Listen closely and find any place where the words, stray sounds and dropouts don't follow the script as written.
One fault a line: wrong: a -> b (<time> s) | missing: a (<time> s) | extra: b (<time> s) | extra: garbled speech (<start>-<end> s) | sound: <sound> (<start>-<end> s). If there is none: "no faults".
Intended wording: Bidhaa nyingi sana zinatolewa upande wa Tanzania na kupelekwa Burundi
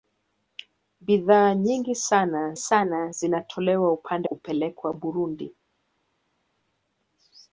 extra: sana (2.6 s)
missing: wa Tanzania na (4.3 s)